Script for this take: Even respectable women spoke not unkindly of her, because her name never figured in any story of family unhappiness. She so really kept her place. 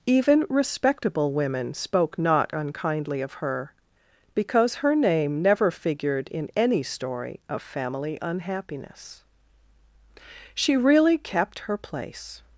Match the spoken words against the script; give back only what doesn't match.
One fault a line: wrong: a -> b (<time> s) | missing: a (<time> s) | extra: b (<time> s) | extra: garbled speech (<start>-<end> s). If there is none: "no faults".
missing: so (10.8 s)